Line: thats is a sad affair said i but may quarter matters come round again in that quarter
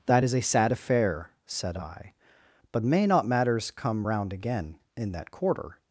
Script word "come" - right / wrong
right